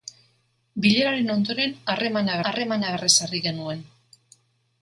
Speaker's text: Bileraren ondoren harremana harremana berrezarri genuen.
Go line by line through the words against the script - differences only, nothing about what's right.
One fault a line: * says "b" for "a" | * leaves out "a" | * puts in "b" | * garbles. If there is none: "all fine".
all fine